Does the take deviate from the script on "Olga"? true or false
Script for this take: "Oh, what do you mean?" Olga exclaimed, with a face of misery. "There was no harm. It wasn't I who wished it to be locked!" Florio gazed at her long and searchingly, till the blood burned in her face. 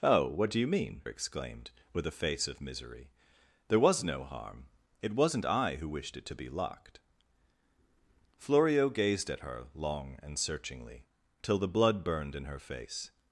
true